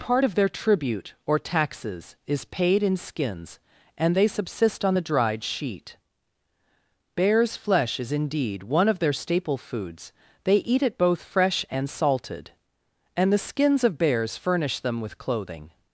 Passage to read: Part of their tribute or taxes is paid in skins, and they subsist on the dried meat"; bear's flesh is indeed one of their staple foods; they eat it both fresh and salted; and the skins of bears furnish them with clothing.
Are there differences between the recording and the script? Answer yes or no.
yes